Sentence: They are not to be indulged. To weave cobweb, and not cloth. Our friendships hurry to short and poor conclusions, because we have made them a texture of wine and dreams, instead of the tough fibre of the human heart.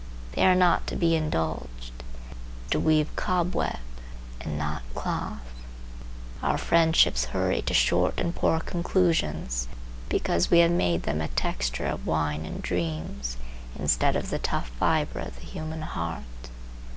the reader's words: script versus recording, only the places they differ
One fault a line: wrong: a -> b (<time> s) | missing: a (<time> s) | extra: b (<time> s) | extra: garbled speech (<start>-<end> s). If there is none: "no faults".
no faults